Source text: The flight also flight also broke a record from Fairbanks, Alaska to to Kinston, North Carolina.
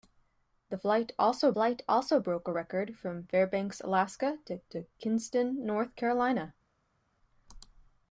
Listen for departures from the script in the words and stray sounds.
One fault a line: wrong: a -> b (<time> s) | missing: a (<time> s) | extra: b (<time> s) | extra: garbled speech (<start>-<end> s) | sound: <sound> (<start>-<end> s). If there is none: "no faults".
no faults